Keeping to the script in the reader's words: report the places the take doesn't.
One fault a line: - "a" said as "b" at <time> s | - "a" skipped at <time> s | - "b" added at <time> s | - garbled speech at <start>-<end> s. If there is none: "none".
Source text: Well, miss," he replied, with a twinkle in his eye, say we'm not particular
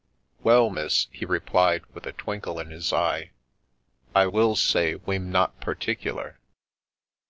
- "I will" added at 4.2 s